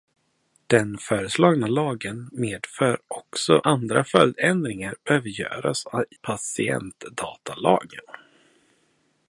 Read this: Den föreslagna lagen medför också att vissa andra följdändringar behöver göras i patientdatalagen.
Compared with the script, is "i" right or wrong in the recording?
wrong